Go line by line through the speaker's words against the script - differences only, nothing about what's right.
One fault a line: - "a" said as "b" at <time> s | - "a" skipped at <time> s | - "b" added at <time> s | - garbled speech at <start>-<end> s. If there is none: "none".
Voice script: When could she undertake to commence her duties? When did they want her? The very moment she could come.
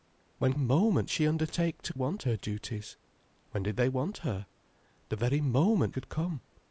- "could" said as "moment" at 0.6 s
- "commence" said as "want" at 1.9 s
- "she" skipped at 5.9 s